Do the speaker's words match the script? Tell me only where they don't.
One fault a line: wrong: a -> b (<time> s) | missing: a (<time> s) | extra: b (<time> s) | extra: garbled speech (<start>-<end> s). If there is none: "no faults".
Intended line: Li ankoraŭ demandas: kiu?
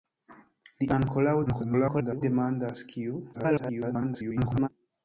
extra: garbled speech (1.5-2.2 s)
extra: garbled speech (3.3-4.7 s)